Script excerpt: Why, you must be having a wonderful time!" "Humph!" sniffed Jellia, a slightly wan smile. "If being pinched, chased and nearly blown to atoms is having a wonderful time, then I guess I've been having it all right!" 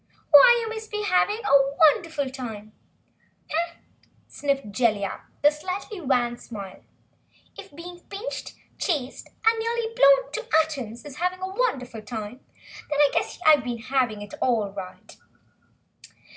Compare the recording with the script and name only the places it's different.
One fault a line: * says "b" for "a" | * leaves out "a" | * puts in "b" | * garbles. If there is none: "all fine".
all fine